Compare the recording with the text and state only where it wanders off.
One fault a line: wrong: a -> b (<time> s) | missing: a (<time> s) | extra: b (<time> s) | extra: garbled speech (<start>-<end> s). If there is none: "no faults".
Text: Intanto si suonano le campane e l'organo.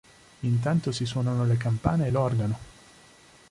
no faults